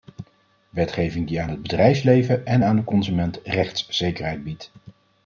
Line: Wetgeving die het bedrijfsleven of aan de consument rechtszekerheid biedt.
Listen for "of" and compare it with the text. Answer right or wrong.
wrong